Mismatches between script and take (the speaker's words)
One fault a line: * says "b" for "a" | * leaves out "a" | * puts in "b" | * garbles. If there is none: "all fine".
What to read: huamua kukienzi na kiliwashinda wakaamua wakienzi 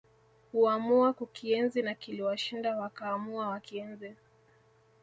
all fine